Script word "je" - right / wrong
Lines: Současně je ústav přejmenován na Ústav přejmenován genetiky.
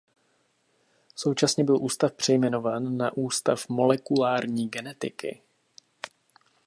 wrong